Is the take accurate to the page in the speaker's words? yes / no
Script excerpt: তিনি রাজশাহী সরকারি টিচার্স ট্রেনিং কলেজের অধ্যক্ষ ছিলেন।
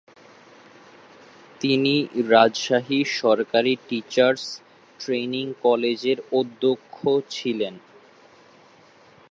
yes